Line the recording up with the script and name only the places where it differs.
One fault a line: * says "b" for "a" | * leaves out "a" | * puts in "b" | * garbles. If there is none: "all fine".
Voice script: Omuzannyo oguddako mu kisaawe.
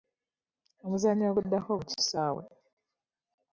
all fine